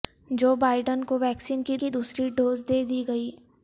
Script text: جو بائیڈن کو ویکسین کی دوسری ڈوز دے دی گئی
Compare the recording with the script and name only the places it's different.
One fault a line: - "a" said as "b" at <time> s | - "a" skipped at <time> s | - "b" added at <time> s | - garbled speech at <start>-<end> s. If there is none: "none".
- "کی" added at 1.8 s